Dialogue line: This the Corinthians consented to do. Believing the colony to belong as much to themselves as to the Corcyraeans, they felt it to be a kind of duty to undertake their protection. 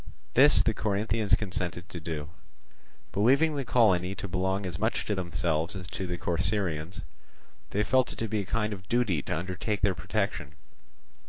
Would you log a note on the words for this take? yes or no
no